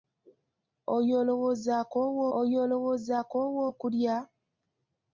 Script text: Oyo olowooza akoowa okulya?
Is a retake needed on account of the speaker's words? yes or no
yes